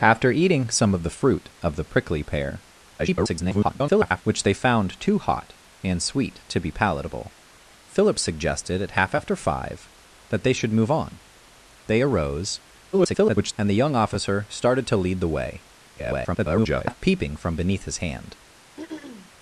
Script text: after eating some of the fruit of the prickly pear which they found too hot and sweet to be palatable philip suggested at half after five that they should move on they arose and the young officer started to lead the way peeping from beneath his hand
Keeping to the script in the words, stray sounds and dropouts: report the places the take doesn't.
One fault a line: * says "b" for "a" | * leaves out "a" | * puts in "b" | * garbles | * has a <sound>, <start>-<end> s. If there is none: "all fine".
* garbles
* garbles
* garbles
* has a throat clearing, 18.8-19.3 s